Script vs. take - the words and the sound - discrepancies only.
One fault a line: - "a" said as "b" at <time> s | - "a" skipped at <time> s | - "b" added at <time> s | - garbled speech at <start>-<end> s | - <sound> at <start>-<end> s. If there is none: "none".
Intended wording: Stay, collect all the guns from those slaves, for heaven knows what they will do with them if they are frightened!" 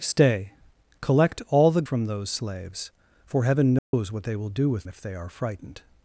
- "guns" skipped at 1.8 s
- dropout at 3.8-3.9 s
- "them" skipped at 4.9 s